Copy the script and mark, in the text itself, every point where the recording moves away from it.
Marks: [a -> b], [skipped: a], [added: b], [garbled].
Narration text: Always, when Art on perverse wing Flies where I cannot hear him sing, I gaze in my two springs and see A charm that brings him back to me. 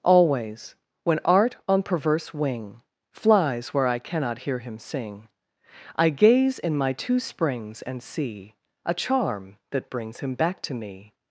Always, when Art on perverse wing Flies where I cannot hear him sing, I gaze in my two springs and see A charm that brings him back to me.